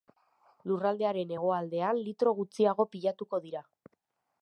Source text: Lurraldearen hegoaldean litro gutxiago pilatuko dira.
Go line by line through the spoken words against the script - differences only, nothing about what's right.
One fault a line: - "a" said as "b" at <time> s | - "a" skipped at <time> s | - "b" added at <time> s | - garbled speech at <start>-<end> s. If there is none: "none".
none